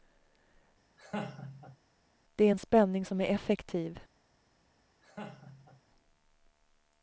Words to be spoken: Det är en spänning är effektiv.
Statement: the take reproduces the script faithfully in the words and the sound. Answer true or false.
false